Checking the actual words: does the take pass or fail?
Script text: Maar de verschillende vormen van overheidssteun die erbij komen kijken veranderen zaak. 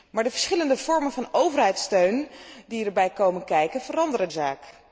pass